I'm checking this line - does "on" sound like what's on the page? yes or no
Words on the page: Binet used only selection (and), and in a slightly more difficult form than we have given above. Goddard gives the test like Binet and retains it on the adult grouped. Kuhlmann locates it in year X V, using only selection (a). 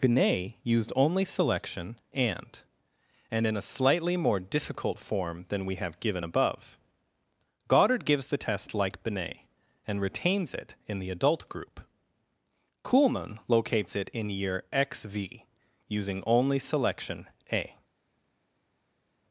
no